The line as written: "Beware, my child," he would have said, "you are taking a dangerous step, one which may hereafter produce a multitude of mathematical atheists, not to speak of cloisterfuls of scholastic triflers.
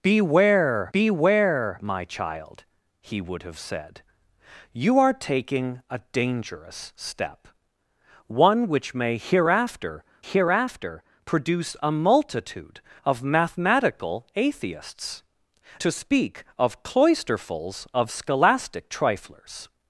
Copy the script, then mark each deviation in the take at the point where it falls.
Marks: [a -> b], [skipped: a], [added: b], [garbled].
"Beware, [added: beware] my child," he would have said, "you are taking a dangerous step, one which may hereafter [added: hereafter] produce a multitude of mathematical atheists, [skipped: not] to speak of cloisterfuls of scholastic triflers.